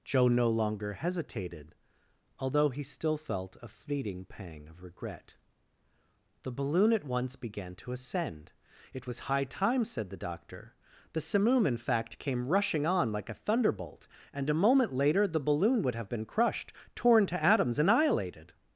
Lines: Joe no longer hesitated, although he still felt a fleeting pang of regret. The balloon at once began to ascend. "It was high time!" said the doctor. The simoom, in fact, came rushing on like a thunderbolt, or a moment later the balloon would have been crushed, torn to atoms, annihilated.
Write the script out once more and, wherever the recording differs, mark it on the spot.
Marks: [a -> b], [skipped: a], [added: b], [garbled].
Joe no longer hesitated, although he still felt a fleeting pang of regret. The balloon at once began to ascend. "It was high time!" said the doctor. The simoom, in fact, came rushing on like a thunderbolt, [or -> and] a moment later the balloon would have been crushed, torn to atoms, annihilated.